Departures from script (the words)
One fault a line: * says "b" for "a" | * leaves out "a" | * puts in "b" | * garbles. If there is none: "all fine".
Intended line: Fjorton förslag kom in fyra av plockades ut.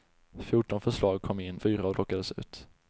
all fine